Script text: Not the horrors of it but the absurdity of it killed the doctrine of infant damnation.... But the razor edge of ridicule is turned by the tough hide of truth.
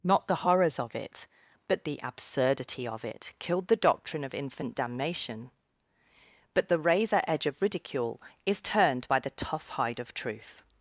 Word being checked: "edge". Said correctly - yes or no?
yes